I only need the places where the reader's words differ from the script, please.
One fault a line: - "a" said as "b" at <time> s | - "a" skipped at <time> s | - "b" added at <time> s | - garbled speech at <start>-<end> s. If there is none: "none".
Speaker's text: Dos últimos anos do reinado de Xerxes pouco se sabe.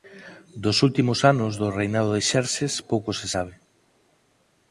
none